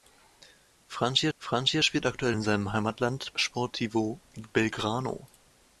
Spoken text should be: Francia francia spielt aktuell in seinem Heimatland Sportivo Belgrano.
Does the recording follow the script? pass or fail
pass